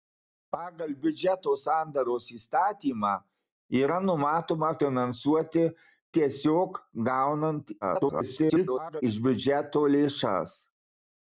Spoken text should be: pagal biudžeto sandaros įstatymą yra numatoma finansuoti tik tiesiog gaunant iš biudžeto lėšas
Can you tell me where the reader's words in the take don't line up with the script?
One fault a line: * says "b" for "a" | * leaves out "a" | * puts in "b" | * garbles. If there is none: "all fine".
* leaves out "tik"
* garbles